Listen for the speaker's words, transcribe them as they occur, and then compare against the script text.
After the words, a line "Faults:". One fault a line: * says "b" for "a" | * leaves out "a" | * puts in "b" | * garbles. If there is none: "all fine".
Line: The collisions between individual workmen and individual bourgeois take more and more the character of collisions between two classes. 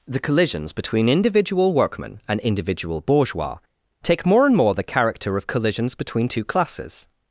The collisions between individual workmen and individual bourgeois take more and more the character of collisions between two classes.
Faults:
all fine